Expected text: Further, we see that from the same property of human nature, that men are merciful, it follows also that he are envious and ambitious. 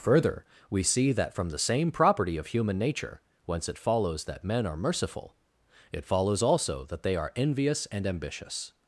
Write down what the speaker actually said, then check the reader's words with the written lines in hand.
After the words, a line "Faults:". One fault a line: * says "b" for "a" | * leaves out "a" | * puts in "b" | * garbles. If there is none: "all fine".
Further, we see that from the same property of human nature, whence it follows that men are merciful, it follows also that they are envious and ambitious.
Faults:
* puts in "whence it follows"
* says "they" for "he"